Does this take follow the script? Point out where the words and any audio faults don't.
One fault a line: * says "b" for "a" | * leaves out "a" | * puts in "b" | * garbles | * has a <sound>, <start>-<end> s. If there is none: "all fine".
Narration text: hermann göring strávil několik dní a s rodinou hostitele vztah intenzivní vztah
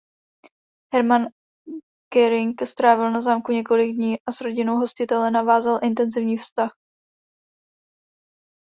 * puts in "na zámku"
* says "navázal" for "vztah"